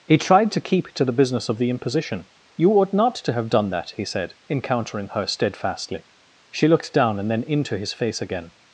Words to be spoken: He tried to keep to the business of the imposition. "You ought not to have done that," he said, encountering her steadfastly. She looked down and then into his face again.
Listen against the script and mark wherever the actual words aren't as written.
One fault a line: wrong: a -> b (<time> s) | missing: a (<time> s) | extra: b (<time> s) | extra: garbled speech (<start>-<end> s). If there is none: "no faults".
no faults